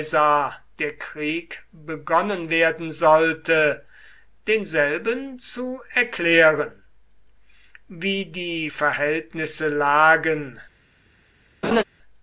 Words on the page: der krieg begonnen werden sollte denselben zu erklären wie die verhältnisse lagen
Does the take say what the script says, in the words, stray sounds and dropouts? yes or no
no